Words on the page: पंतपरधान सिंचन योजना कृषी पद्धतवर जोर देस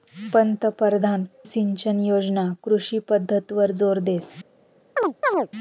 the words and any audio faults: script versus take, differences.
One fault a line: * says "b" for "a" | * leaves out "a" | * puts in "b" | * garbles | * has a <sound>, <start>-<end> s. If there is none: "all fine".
* has a chirp, 5.0-5.5 s